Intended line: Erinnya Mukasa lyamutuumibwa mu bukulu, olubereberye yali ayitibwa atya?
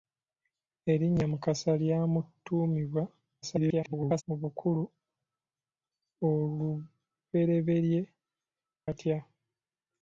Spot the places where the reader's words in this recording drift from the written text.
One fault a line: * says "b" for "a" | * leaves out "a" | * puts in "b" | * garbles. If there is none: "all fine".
* garbles
* leaves out "yali ayitibwa"